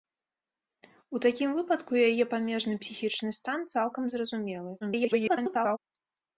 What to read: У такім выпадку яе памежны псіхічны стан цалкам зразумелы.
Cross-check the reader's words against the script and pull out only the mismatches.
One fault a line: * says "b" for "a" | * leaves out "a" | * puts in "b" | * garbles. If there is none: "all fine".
* garbles